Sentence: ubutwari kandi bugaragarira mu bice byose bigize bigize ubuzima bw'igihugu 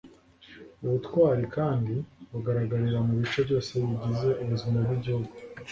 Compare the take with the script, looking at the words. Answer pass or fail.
fail